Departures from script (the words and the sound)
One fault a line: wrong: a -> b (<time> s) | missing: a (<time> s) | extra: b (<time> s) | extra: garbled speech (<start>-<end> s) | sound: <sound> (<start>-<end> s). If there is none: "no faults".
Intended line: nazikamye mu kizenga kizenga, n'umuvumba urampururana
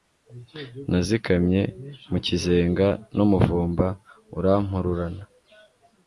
missing: kizenga (2.9 s)